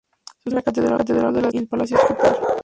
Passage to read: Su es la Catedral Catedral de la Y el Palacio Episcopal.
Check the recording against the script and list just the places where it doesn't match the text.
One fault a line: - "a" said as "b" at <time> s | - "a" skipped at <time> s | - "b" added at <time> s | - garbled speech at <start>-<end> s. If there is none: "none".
none